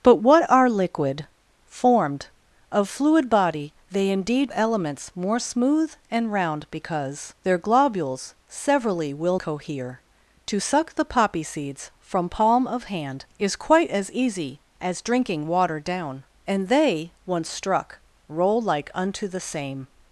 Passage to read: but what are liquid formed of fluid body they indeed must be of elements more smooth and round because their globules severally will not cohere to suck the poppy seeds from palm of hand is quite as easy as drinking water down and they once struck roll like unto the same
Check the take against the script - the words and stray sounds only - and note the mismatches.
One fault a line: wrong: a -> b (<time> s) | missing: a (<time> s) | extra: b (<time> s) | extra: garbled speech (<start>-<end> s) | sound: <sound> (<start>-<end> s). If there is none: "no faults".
missing: must be of (4.5 s)
missing: not (9.4 s)